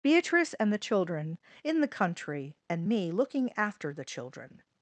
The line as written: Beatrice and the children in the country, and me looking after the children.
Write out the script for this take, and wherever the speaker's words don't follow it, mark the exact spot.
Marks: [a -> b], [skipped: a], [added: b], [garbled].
Beatrice and the children in the country, and me looking after the children.